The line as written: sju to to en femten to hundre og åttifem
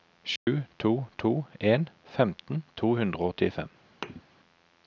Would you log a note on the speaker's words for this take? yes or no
no